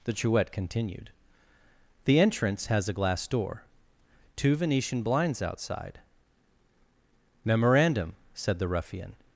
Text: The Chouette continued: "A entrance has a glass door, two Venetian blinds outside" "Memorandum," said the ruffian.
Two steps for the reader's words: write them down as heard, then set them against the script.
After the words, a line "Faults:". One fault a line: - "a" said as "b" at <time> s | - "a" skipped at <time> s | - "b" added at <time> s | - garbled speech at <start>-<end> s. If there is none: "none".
The Chouette continued: "The entrance has a glass door, two Venetian blinds outside" "Memorandum," said the ruffian.
Faults:
- "A" said as "The" at 2.0 s